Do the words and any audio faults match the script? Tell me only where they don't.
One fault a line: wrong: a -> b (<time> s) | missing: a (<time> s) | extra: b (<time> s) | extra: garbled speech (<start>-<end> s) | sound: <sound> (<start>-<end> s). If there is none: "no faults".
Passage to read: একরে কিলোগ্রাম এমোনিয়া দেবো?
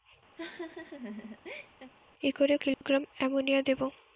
sound: laugh (0.4-1.9 s)
sound: dropout (2.7-2.8 s)